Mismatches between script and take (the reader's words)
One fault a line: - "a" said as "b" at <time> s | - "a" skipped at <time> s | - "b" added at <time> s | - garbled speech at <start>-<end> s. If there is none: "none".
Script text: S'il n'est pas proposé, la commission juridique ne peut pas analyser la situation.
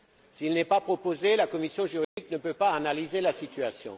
none